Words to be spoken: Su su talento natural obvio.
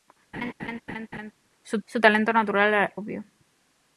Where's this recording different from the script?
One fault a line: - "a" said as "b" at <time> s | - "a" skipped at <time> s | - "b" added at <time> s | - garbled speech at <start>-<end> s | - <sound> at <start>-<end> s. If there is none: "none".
- laugh at 0.3-1.3 s